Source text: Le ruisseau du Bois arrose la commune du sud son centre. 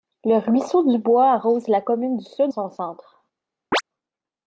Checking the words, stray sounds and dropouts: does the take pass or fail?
fail